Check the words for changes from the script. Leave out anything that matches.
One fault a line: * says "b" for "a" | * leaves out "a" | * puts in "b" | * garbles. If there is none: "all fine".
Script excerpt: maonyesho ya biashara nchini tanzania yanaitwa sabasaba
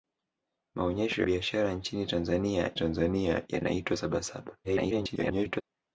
* leaves out "ya"
* puts in "tanzania"
* garbles